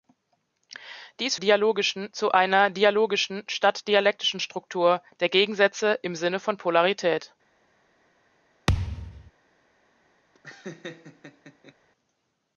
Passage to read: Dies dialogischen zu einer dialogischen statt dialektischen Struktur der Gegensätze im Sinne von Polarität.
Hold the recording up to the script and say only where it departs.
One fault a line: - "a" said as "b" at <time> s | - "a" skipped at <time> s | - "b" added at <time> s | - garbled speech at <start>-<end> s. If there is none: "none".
none